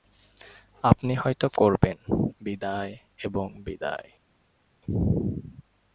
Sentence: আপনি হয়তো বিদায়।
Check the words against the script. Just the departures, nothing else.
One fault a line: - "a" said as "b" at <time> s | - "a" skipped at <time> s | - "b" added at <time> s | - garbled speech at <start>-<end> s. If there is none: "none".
- "করবেন বিদায় এবং" added at 1.5 s